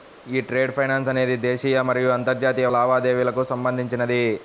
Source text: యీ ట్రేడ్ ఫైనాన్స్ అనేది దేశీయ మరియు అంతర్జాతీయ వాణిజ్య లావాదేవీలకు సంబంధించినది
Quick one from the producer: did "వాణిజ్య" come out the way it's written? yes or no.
no